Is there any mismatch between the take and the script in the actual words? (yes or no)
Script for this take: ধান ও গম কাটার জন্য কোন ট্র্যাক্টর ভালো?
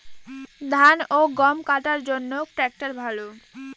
yes